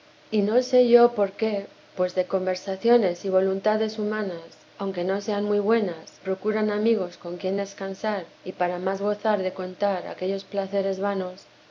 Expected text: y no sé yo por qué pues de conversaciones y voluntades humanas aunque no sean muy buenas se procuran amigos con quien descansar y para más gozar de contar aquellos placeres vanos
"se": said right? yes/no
no